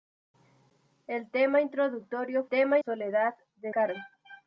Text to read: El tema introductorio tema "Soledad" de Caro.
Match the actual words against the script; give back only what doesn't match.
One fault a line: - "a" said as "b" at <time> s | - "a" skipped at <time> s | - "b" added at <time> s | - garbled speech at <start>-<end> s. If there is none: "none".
none